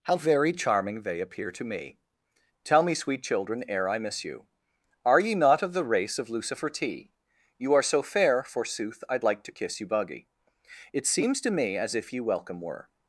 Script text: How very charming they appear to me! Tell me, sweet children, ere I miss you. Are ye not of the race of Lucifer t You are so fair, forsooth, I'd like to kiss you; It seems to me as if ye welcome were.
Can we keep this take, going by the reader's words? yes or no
no